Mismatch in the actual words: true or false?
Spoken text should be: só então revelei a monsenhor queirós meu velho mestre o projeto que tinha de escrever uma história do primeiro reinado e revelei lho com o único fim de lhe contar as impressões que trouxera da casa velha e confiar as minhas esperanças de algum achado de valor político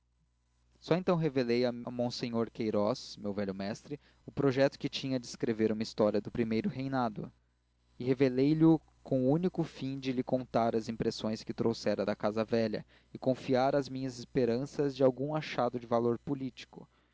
false